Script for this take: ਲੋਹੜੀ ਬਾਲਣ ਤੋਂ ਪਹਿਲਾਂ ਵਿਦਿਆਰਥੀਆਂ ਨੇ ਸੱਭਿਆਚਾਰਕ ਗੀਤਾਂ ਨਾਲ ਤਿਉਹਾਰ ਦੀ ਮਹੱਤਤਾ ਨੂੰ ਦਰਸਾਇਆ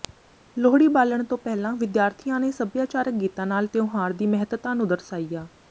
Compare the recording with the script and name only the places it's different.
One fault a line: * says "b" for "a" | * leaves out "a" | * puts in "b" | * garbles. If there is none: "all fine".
all fine